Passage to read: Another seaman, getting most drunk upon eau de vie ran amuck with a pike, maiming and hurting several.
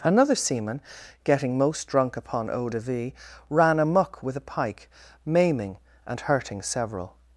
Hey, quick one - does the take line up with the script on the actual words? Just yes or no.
yes